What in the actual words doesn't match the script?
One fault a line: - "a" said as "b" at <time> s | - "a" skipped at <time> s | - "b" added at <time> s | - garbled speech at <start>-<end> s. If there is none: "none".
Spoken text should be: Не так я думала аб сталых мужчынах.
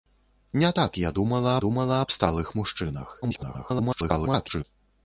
- "думала" added at 1.6 s
- garbled speech at 3.2-4.6 s